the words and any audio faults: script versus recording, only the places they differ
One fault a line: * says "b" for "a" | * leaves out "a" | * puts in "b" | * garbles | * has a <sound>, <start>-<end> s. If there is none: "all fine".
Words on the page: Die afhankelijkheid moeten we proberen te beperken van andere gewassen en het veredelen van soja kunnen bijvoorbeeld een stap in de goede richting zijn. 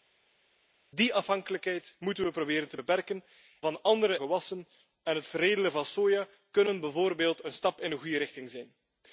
all fine